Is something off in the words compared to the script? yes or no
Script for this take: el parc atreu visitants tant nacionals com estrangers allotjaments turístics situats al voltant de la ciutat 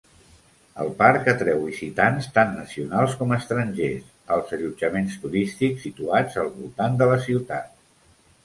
yes